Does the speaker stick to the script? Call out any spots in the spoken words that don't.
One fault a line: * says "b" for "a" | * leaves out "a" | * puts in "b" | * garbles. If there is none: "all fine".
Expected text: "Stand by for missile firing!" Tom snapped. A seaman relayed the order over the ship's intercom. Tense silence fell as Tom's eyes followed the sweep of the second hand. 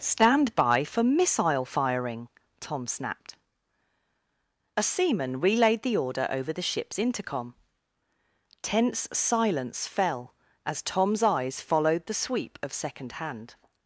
* leaves out "the"